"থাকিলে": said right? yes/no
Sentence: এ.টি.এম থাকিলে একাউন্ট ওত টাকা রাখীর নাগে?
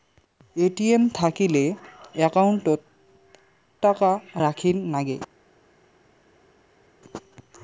yes